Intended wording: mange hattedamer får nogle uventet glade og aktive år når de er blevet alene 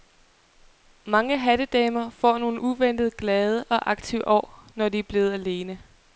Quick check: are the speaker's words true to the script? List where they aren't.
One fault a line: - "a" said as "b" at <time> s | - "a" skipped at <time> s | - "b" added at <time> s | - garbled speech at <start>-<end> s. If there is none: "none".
none